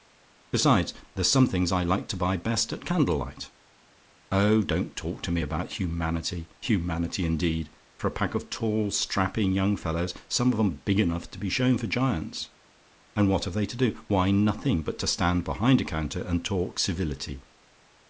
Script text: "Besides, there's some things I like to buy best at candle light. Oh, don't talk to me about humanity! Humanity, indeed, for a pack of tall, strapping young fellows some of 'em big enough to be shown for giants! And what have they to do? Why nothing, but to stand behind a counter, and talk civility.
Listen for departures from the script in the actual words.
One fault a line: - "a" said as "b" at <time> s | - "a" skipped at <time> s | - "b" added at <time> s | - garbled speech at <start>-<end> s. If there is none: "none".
none